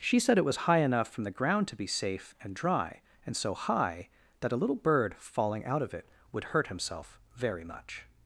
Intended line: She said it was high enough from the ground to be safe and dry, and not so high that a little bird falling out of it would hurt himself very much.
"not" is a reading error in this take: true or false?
true